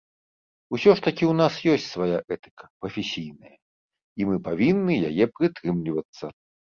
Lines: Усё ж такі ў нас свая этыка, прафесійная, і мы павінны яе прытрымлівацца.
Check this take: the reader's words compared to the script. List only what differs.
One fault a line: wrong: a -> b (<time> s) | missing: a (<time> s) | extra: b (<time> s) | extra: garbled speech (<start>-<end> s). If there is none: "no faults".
extra: ёсць (1.7 s)